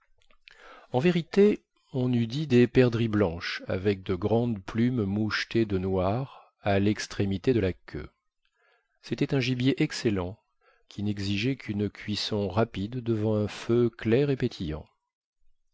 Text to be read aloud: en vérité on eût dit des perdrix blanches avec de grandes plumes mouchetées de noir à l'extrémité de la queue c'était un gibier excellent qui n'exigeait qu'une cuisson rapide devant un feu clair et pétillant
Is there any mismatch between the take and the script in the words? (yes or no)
no